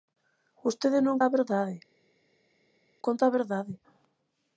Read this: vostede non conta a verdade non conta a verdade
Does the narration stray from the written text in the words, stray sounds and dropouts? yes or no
yes